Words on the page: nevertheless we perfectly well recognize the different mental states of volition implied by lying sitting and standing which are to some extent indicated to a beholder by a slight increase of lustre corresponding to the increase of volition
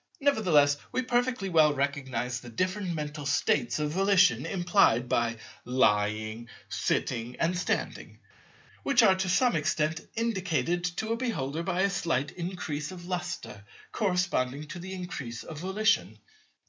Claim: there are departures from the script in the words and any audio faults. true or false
false